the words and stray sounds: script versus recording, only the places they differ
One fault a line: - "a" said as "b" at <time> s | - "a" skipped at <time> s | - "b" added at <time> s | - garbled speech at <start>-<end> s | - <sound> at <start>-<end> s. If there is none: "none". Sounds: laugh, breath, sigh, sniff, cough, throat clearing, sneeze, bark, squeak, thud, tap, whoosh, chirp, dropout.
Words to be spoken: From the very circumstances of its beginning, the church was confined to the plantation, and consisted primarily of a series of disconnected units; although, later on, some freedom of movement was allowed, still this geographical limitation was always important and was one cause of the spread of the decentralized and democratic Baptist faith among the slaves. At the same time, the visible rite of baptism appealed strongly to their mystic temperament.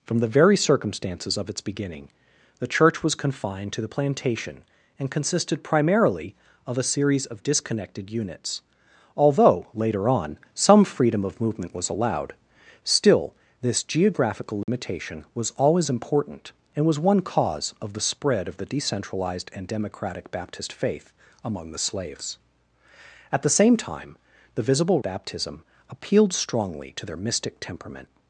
- dropout at 14.6-14.7 s
- "rite of" skipped at 25.0 s